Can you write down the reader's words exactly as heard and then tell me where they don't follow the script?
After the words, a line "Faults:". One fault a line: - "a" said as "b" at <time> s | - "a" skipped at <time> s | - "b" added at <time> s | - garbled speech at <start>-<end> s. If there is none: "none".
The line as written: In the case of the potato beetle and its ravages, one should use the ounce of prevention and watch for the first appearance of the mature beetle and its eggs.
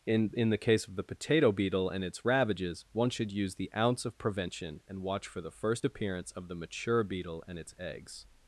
In in the case of the potato beetle and its ravages, one should use the ounce of prevention and watch for the first appearance of the mature beetle and its eggs.
Faults:
- "in" added at 0.3 s